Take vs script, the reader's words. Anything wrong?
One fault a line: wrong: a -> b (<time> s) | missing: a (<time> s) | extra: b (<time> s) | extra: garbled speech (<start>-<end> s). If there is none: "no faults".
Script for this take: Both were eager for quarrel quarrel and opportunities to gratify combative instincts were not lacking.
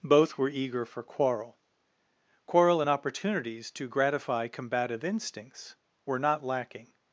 no faults